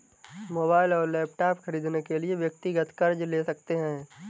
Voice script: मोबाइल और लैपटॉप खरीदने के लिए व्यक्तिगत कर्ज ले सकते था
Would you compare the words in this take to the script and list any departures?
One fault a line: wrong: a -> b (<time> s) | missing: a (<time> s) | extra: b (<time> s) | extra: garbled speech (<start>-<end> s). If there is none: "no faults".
wrong: था -> है (3.8 s)